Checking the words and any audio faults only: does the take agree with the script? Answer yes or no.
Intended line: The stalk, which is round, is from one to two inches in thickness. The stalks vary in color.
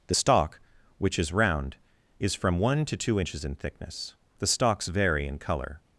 yes